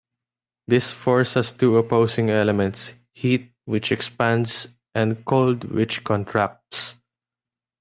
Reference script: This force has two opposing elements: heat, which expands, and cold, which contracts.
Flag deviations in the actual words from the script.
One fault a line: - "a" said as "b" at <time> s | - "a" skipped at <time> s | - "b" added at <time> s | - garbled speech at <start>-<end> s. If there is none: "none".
none